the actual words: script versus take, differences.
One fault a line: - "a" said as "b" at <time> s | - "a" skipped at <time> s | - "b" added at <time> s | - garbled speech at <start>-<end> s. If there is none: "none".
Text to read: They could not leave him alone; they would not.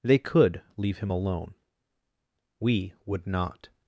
- "not" skipped at 0.6 s
- "they" said as "we" at 2.6 s